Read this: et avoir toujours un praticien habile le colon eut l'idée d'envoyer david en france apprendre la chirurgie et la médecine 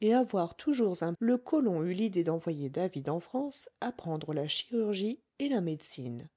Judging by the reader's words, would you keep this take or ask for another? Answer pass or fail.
fail